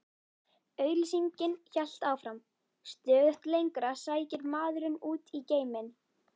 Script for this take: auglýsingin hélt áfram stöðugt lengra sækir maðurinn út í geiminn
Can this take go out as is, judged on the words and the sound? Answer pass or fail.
pass